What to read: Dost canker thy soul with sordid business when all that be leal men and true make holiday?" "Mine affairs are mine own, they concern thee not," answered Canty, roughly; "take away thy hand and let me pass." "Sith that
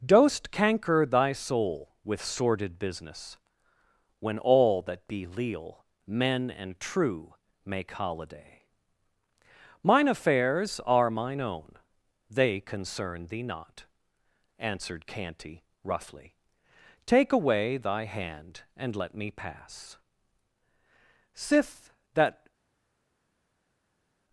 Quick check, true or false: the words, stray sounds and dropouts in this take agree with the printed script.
true